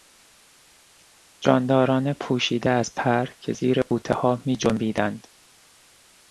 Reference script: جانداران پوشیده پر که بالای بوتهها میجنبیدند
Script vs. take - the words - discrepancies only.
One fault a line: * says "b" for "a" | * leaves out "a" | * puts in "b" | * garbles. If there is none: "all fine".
* puts in "از"
* says "زیر" for "بالای"